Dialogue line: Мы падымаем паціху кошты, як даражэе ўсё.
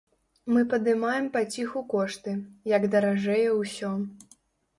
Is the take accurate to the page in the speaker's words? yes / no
yes